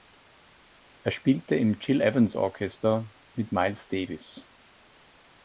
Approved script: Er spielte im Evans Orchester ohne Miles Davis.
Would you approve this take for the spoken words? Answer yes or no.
no